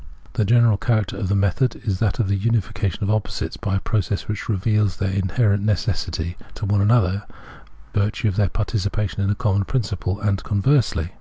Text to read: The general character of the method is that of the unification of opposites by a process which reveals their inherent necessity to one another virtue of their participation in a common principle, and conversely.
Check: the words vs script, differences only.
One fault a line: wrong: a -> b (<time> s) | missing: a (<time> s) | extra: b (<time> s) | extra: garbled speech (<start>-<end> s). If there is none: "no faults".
no faults